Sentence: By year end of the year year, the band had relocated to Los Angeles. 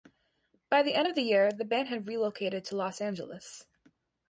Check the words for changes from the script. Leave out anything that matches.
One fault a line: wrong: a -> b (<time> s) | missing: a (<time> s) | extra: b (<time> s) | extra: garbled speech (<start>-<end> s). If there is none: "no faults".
wrong: year -> the (0.8 s)
missing: year (1.5 s)